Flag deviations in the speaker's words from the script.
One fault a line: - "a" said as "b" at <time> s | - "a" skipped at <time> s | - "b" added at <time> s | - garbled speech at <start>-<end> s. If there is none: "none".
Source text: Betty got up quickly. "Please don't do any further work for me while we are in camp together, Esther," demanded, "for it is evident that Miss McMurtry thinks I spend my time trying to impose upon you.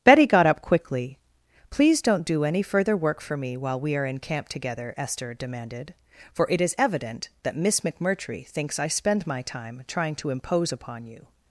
none